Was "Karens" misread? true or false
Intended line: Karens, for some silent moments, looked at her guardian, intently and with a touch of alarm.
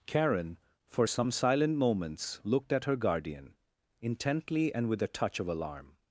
true